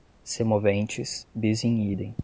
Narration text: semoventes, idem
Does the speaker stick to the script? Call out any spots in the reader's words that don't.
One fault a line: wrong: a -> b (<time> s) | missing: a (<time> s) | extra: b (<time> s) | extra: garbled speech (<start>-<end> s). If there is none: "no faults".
extra: bis in (1.3 s)